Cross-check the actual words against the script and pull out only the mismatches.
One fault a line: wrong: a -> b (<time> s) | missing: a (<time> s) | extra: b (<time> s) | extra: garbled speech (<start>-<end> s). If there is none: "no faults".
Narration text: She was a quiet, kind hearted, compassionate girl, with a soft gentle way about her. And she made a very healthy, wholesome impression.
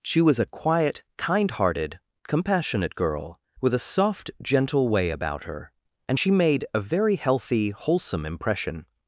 no faults